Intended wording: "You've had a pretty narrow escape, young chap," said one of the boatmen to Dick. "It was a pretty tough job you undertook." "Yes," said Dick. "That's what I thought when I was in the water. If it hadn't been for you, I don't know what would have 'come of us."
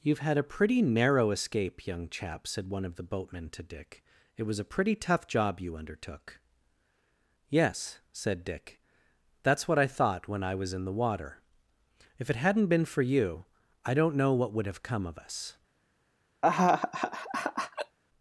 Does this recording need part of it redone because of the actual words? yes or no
no